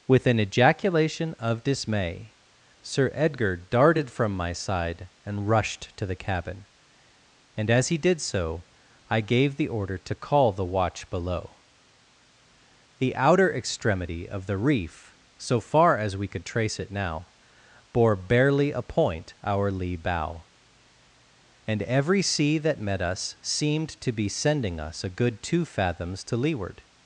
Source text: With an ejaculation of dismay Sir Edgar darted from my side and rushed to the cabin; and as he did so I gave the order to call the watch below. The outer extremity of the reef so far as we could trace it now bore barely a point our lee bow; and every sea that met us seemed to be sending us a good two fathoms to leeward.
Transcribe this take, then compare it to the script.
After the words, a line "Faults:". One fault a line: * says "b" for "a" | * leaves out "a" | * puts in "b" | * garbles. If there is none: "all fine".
With an ejaculation of dismay Sir Edgar darted from my side and rushed to the cabin; and as he did so I gave the order to call the watch below. The outer extremity of the reef so far as we could trace it now bore barely a point our lee bow; and every sea that met us seemed to be sending us a good two fathoms to leeward.
Faults:
all fine